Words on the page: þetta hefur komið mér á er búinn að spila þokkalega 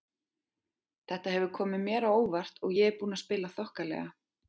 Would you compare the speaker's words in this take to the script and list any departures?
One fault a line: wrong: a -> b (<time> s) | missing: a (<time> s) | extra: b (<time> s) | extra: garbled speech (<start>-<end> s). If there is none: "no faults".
extra: óvart og ég (2.2 s)